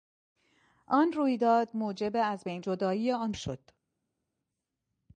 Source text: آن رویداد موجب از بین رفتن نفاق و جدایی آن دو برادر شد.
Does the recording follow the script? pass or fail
fail